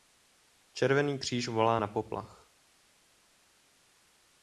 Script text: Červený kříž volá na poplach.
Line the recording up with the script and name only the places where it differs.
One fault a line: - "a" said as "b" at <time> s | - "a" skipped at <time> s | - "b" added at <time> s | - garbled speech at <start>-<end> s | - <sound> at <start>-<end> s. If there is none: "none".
none